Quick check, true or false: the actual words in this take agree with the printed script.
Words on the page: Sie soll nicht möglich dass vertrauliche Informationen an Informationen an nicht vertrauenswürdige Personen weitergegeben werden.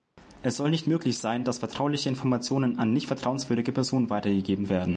false